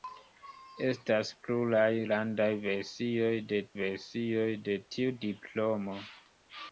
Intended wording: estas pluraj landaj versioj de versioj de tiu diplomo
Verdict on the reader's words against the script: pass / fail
pass